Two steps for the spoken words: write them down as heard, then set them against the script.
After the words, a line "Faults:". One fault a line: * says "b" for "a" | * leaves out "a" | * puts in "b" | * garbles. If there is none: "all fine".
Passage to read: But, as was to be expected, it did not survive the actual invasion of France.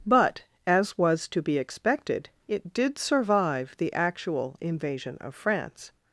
But, as was to be expected, it did survive the actual invasion of France.
Faults:
* leaves out "not"